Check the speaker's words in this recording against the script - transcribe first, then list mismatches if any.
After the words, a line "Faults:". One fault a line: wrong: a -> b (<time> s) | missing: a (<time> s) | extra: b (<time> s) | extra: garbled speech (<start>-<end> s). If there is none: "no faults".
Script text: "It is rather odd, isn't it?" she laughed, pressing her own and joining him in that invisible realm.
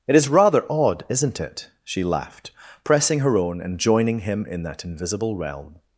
"It is rather odd, isn't it?" she laughed, pressing her own and joining him in that invisible realm.
Faults:
no faults